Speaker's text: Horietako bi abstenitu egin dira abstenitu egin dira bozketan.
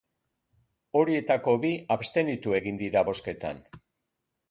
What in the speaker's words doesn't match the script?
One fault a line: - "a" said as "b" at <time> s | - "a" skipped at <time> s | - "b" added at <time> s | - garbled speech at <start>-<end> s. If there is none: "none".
- "abstenitu egin dira" skipped at 3.0 s